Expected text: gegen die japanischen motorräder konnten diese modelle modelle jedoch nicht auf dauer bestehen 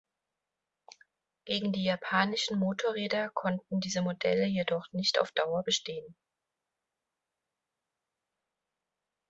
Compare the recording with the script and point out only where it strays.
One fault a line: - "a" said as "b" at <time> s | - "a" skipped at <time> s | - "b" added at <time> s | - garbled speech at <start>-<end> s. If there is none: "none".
- "modelle" skipped at 4.5 s